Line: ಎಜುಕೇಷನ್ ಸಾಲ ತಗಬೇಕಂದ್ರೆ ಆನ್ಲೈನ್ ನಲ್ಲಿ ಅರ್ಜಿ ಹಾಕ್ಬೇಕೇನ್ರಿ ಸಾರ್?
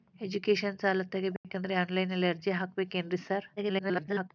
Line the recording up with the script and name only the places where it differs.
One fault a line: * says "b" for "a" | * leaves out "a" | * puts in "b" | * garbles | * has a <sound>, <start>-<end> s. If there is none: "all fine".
* has a dropout, 1.4-1.4 s
* garbles